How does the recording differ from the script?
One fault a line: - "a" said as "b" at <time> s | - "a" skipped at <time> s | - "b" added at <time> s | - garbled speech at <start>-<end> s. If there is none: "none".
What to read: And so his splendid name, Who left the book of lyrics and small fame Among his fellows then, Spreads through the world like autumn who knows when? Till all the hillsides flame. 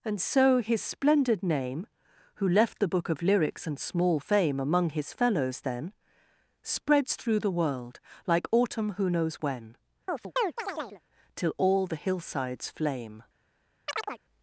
none